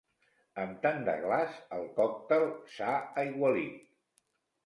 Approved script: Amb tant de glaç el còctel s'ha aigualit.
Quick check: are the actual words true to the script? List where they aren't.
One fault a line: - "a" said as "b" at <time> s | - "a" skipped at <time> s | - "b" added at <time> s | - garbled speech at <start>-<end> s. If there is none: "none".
none